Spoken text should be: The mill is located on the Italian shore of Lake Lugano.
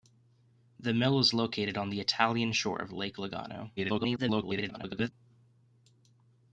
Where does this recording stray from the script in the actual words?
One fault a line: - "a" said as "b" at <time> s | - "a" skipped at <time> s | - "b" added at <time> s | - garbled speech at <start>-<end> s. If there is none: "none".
- garbled speech at 3.8-5.1 s